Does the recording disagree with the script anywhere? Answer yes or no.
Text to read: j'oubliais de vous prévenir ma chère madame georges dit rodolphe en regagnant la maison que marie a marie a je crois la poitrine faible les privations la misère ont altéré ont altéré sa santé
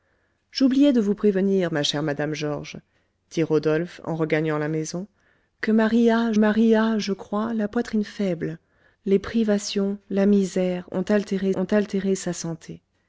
no